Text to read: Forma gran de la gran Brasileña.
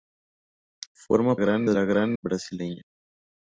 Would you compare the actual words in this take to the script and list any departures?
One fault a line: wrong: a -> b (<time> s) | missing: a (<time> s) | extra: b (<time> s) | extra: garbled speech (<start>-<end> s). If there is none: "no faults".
no faults